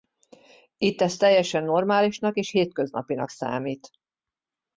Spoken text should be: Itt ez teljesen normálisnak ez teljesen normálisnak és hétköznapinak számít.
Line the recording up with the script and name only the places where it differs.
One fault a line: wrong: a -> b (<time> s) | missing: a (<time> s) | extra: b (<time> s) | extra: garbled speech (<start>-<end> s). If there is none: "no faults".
missing: ez teljesen normálisnak (2.4 s)